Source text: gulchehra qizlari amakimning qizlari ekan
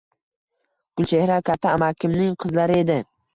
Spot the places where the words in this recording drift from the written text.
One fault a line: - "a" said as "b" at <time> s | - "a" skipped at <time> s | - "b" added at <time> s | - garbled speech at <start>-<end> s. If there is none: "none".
- "qizlari" said as "katta" at 1.5 s
- "ekan" said as "edi" at 2.9 s